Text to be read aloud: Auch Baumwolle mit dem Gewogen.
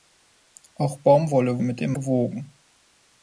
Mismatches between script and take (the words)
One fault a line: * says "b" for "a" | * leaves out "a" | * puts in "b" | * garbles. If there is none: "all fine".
all fine